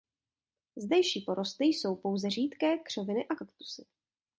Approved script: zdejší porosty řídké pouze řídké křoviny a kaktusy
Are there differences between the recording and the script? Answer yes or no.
yes